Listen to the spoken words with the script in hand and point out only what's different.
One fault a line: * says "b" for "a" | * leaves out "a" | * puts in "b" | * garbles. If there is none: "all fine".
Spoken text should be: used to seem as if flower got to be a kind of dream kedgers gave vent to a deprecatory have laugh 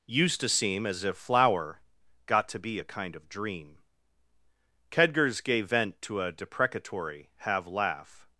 all fine